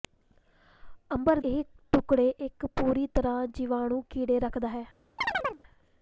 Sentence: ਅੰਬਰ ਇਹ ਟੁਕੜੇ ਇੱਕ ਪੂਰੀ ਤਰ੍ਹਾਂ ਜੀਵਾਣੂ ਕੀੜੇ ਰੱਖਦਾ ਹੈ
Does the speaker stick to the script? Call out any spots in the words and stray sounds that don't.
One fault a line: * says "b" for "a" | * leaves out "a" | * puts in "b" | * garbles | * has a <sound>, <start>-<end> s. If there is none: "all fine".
* has a chirp, 5.2-5.6 s